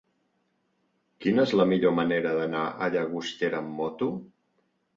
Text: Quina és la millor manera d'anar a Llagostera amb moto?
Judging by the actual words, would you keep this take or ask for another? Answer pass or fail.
pass